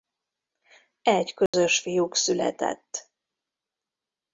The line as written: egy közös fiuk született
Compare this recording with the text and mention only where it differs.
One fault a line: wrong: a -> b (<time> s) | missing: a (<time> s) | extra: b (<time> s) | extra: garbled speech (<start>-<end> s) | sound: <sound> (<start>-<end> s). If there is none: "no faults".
sound: dropout (1.5-1.5 s)